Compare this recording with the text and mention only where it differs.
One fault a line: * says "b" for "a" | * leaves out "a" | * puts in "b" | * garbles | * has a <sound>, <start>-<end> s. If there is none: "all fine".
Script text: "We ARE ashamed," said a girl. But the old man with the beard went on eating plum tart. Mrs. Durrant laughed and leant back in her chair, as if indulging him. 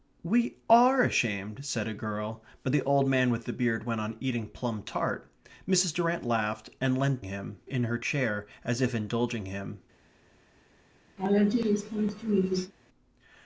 * says "him" for "back"
* has a laugh, 11.2-12.7 s